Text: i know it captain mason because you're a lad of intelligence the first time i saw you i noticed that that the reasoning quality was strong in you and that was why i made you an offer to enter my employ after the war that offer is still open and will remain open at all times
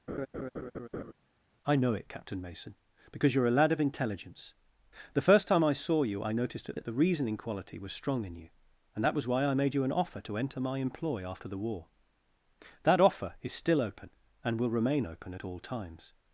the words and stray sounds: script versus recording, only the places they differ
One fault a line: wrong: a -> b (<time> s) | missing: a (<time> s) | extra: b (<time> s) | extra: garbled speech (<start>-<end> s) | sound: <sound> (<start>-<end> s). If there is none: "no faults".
sound: laugh (0.1-1.1 s)